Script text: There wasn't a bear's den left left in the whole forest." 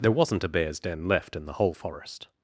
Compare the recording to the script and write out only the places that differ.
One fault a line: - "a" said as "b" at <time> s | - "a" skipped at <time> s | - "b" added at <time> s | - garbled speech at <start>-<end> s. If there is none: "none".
- "left" skipped at 1.4 s